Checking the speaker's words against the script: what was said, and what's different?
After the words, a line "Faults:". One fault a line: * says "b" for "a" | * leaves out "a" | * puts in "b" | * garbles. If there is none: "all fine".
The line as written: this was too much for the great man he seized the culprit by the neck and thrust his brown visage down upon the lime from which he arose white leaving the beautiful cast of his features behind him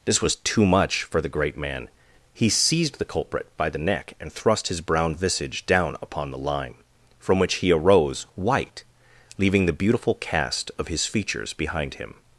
this was too much for the great man he seized the culprit by the neck and thrust his brown visage down upon the lime from which he arose white leaving the beautiful cast of his features behind him
Faults:
all fine